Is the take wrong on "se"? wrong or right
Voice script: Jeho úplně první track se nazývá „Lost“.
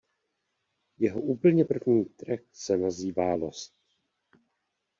right